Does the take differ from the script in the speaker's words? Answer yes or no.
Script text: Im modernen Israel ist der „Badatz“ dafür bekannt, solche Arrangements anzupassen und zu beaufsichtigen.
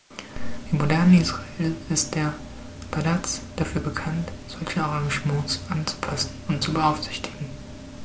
no